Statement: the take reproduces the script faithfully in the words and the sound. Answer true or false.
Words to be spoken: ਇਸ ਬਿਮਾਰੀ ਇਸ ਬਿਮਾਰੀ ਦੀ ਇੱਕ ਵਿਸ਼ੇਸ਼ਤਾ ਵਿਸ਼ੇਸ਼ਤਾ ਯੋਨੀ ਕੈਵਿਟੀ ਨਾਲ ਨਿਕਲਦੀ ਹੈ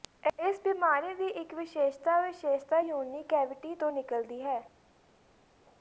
false